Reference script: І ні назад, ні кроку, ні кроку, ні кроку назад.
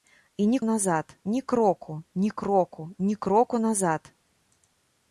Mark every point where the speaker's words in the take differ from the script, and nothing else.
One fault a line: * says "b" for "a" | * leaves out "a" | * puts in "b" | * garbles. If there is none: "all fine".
all fine